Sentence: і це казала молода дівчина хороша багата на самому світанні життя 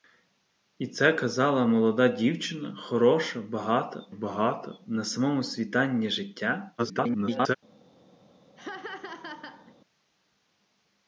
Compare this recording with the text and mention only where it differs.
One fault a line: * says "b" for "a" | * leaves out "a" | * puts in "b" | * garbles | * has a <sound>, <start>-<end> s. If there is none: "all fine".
* puts in "багата"
* garbles
* has a laugh, 8.6-9.8 s